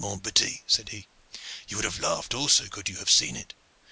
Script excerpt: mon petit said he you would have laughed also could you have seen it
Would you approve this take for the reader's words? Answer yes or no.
yes